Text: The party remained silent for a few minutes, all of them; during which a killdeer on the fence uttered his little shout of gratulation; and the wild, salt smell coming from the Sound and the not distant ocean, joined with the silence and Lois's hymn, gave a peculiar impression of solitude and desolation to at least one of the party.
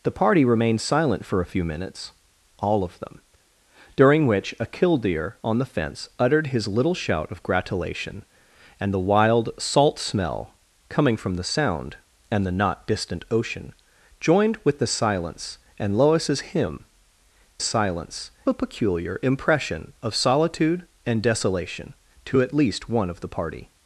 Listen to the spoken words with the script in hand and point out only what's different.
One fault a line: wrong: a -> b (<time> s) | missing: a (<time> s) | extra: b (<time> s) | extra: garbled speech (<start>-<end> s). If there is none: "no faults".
wrong: gave -> silence (17.6 s)